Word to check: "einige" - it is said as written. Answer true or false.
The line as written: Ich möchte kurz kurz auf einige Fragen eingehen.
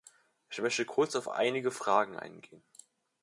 true